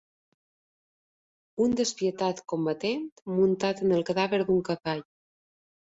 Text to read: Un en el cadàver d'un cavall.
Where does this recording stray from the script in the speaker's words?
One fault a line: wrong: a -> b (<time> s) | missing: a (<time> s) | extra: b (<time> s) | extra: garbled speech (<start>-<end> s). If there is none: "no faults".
extra: despietat combatent muntat (1.8 s)